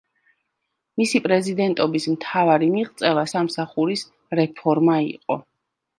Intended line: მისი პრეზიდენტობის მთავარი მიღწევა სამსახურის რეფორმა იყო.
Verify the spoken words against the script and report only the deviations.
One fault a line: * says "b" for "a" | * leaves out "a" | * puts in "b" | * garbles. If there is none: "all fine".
all fine